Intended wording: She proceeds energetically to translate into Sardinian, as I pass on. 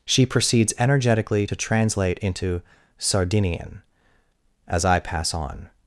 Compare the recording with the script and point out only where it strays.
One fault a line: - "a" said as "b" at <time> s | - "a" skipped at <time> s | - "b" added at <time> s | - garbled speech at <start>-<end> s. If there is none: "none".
none